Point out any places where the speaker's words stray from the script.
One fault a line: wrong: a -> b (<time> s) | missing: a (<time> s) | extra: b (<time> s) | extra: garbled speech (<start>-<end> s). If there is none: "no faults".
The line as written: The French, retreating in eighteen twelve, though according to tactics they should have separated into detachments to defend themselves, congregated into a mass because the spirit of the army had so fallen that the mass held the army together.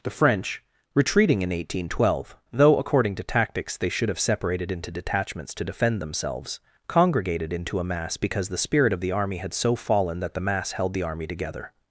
no faults